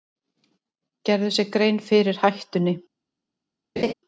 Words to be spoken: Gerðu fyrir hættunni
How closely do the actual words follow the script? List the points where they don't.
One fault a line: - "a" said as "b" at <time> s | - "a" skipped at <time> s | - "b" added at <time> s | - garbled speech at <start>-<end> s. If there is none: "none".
- "sér grein" added at 1.3 s